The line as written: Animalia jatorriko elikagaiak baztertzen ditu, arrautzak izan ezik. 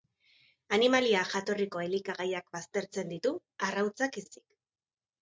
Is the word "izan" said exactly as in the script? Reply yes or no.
no